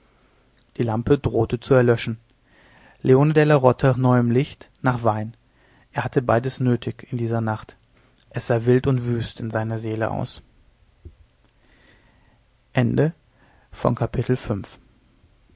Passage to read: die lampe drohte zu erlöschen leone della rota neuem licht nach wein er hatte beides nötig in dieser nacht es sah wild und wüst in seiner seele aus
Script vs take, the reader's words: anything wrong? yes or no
no